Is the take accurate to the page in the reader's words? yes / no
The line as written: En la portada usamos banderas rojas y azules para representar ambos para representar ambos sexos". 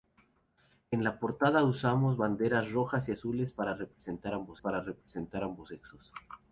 yes